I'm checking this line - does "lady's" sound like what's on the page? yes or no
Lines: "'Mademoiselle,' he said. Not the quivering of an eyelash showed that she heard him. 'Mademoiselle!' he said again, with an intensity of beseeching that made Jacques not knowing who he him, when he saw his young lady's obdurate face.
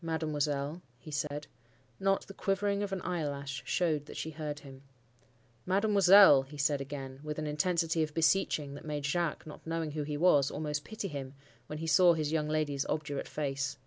yes